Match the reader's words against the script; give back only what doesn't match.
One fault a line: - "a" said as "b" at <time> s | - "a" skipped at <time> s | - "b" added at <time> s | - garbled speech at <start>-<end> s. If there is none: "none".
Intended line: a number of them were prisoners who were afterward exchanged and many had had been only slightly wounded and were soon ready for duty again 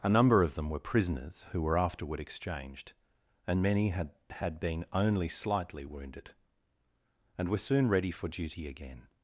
none